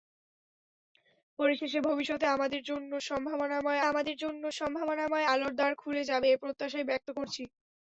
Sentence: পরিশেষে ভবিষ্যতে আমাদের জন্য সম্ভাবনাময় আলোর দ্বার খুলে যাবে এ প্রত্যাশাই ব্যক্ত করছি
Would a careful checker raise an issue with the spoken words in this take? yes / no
yes